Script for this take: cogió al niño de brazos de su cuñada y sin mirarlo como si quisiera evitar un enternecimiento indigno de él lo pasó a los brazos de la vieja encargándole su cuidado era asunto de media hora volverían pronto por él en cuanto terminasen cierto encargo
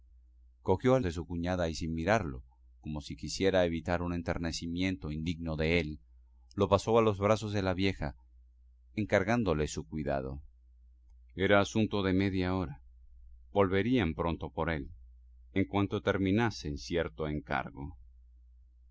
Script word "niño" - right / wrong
wrong